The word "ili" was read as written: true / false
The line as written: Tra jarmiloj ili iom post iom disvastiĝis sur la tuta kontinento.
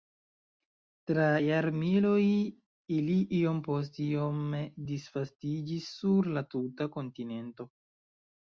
true